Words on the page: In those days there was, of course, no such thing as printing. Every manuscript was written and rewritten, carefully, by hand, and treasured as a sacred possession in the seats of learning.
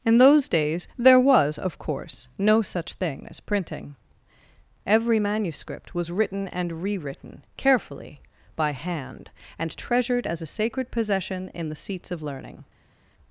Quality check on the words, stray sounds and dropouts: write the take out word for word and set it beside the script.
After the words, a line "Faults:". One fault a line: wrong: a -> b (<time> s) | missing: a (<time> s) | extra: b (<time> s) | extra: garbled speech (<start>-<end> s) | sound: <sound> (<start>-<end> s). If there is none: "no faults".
In those days there was, of course, no such thing as printing. Every manuscript was written and rewritten, carefully, by hand, and treasured as a sacred possession in the seats of learning.
Faults:
no faults